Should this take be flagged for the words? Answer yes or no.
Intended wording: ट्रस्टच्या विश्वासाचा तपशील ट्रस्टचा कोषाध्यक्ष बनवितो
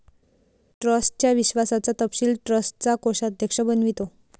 no